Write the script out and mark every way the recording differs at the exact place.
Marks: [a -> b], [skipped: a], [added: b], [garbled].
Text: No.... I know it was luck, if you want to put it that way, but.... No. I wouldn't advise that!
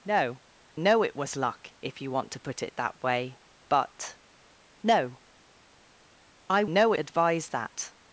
No.... [skipped: I] know it was luck, if you want to put it that way, but.... No. I [wouldn't -> know] advise that!